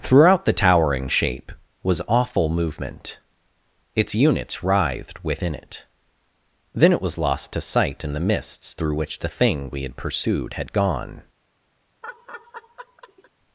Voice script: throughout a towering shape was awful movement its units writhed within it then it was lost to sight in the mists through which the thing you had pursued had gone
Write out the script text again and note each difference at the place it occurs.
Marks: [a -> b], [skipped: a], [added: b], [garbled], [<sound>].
throughout [a -> the] towering shape was awful movement its units writhed within it then it was lost to sight in the mists through which the thing [you -> we] had pursued had gone [laugh]